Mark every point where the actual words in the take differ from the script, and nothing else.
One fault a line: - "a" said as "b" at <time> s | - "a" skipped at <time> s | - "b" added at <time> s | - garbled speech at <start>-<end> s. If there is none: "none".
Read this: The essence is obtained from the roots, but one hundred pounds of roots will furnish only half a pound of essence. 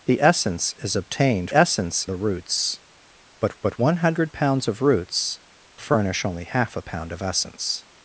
- "from" said as "essence" at 1.5 s
- "but" added at 3.6 s
- "will" skipped at 5.4 s